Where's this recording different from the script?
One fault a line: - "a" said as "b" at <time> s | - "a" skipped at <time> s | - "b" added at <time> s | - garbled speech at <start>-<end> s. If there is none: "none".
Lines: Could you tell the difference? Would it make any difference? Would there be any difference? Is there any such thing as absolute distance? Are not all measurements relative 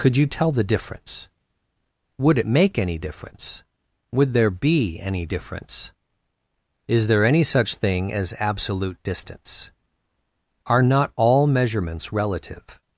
none